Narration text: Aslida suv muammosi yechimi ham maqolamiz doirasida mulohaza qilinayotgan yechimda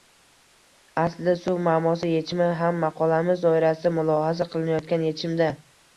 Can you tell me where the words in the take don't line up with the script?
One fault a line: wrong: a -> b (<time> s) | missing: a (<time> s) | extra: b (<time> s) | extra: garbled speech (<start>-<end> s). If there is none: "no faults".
no faults